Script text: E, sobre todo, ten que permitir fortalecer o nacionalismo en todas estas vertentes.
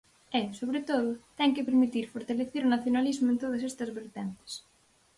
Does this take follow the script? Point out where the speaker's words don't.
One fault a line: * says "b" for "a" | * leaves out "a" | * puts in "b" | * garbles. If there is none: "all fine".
all fine